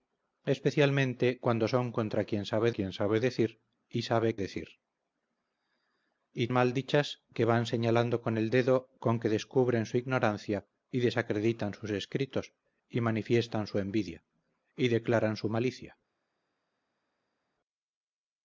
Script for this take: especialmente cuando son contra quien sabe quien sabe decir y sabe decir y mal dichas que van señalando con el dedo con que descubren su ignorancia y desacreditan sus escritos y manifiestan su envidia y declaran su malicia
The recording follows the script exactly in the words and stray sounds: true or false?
true